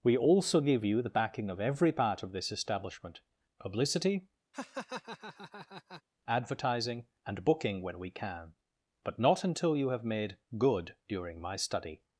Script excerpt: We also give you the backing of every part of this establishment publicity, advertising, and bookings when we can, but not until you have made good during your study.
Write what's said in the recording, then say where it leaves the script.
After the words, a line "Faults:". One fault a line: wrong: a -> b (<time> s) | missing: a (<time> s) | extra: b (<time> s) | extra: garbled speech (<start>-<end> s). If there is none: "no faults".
We also give you the backing of every part of this establishment publicity, advertising, and booking when we can, but not until you have made good during my study.
Faults:
wrong: bookings -> booking (7.4 s)
wrong: your -> my (11.4 s)